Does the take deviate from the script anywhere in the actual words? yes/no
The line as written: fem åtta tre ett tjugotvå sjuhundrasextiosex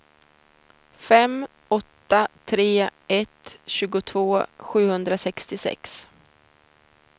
no